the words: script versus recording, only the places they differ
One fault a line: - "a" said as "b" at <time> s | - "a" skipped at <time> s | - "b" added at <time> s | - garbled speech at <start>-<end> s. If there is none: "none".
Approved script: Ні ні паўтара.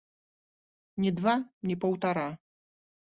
- "два" added at 1.2 s